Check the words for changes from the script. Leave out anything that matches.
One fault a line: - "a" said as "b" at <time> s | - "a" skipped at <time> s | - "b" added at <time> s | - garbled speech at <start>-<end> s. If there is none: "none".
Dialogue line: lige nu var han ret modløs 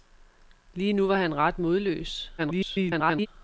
- garbled speech at 2.4-3.3 s